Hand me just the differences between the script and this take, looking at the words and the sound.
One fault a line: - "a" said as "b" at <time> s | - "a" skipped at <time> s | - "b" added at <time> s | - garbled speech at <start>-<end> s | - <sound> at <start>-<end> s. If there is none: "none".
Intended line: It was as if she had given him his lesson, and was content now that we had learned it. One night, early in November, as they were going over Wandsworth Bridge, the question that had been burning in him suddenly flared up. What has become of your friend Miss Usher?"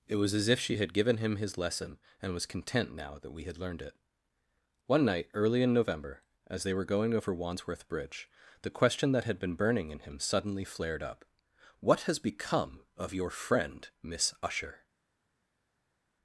none